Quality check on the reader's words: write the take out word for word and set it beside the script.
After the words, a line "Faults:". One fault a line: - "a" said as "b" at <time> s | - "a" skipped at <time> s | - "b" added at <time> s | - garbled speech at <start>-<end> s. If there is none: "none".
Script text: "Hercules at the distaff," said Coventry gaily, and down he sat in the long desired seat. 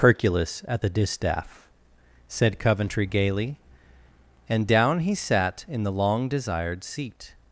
"Hercules at the distaff," said Coventry gaily, and down he sat in the long desired seat.
Faults:
none